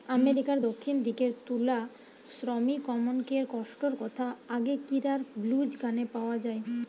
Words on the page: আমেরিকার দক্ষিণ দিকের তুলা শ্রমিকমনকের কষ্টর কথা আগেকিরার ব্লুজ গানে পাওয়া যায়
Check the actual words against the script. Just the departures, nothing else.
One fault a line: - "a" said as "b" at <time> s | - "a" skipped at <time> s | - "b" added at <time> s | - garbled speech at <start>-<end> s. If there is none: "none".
none